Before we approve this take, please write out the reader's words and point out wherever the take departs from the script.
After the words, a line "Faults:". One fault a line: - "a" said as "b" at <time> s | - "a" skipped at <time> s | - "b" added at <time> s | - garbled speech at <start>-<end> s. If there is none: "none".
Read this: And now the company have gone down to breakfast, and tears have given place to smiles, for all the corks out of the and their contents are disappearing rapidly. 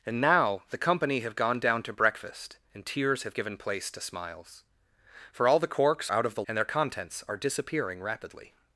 And now the company have gone down to breakfast, and tears have given place to smiles, for all the corks out of the and their contents are disappearing rapidly.
Faults:
none